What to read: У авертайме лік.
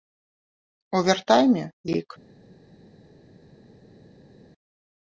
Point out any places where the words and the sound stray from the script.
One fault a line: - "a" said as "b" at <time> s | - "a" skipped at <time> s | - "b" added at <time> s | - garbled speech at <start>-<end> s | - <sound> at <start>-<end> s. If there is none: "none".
none